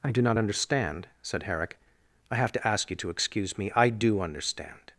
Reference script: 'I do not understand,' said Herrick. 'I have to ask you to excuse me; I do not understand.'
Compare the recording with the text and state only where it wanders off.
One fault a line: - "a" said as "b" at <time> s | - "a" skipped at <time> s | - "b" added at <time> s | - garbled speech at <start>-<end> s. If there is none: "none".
- "not" skipped at 4.2 s